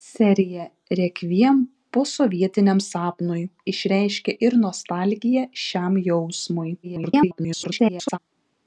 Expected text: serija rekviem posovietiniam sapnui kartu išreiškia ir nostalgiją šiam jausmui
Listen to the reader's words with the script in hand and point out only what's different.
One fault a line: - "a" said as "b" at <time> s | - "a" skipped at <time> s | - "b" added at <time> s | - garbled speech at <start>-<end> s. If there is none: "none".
- "kartu" skipped at 3.4 s
- garbled speech at 6.8-8.2 s